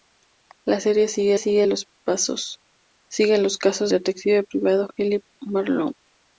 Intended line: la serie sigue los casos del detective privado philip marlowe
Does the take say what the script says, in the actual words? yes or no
no